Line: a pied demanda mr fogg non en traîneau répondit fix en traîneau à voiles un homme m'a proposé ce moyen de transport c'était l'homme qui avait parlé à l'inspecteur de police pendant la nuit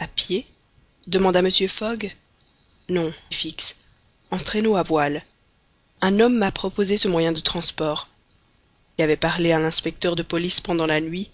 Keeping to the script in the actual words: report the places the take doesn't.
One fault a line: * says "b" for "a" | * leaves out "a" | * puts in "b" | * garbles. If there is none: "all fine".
* leaves out "en traîneau répondit"
* leaves out "c'était l'homme qui"